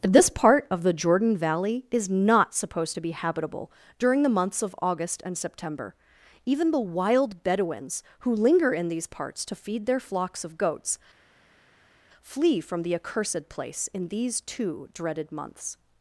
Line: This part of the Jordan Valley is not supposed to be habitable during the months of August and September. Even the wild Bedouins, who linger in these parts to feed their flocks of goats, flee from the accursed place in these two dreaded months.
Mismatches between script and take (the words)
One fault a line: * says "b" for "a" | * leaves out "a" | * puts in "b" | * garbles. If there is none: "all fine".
all fine